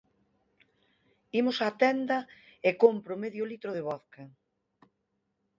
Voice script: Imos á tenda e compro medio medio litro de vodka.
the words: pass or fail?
fail